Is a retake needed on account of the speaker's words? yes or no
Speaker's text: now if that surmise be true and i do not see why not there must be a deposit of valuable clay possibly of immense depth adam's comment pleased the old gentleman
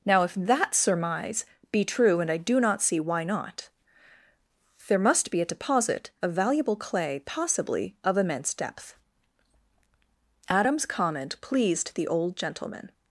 no